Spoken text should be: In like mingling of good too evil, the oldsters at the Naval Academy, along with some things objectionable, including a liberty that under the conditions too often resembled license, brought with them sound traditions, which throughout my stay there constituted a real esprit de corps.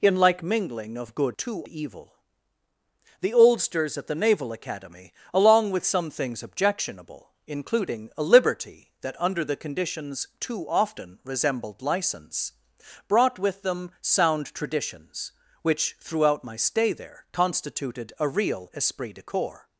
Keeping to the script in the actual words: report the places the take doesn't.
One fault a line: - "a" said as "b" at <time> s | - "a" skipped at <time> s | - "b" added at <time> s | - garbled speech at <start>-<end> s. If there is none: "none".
none